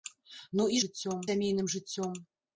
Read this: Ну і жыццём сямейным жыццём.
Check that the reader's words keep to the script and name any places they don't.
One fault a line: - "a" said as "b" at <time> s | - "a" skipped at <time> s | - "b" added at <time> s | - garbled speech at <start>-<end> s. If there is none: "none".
none